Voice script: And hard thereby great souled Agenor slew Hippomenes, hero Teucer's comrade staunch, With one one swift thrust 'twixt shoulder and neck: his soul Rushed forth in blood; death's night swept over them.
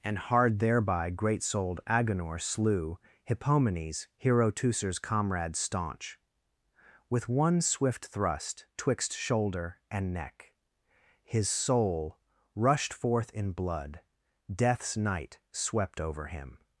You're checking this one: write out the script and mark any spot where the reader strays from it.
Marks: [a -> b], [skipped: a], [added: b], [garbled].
And hard thereby great souled Agenor slew Hippomenes, hero Teucer's comrade staunch, With one [skipped: one] swift thrust 'twixt shoulder and neck: his soul Rushed forth in blood; death's night swept over [them. -> him]